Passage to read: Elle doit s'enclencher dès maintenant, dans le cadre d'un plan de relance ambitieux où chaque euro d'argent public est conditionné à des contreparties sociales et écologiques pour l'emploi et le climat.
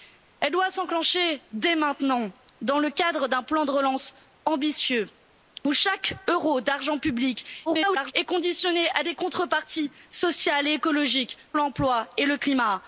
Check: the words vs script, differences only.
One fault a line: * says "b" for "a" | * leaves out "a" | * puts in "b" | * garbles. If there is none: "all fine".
* garbles
* leaves out "pour"